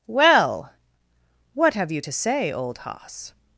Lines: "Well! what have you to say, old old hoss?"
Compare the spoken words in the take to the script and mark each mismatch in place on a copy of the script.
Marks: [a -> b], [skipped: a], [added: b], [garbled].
"Well! what have you to say, old [skipped: old] hoss?"